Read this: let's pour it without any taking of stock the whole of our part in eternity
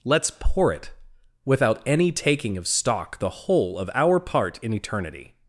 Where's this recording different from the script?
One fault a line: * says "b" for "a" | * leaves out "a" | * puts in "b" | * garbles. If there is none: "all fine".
all fine